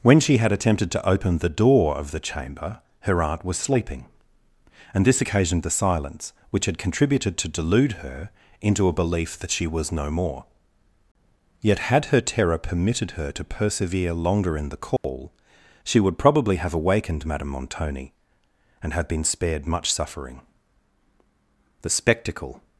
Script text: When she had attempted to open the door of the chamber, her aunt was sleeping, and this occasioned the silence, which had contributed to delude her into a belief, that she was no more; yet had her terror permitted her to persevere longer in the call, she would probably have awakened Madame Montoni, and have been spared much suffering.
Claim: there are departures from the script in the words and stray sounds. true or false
true